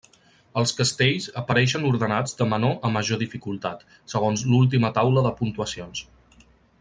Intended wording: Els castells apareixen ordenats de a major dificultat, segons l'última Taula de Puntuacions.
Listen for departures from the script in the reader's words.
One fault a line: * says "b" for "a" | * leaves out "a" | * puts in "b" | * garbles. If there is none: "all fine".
* puts in "menor"